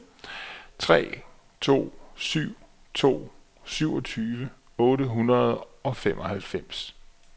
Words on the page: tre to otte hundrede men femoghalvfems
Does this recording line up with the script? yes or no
no